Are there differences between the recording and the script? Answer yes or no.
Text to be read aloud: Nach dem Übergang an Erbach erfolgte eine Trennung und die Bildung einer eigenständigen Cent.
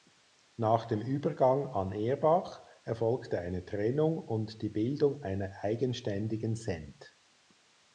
no